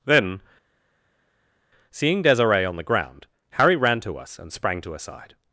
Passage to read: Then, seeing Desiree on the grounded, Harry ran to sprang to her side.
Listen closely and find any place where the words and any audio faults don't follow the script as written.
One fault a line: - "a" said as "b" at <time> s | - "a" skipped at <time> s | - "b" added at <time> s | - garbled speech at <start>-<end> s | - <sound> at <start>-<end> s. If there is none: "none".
- "grounded" said as "ground" at 2.8 s
- "us and" added at 4.2 s